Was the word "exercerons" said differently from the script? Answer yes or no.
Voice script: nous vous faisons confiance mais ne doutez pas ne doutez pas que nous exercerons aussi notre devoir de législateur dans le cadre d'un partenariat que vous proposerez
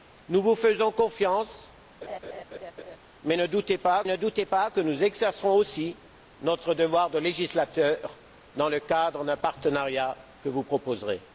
no